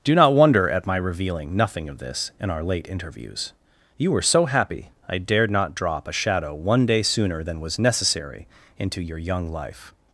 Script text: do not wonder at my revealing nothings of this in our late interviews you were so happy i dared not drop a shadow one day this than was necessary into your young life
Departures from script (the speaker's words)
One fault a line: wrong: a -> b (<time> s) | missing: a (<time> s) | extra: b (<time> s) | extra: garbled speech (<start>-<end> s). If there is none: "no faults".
wrong: nothings -> nothing (1.6 s)
wrong: this -> sooner (7.0 s)